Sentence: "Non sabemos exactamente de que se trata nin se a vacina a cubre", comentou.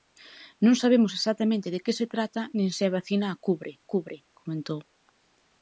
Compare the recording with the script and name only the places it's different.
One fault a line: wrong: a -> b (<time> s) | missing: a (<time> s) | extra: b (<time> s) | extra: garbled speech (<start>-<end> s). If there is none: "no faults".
extra: cubre (3.9 s)